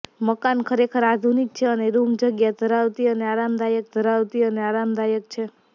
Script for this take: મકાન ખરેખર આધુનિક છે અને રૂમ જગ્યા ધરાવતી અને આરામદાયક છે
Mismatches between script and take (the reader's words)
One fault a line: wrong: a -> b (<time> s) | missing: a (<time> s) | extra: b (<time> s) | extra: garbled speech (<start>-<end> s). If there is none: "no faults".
extra: ધરાવતી અને આરામદાયક (3.9 s)